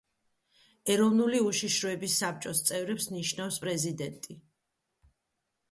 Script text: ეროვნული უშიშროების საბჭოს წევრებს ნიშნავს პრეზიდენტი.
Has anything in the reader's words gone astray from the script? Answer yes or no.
no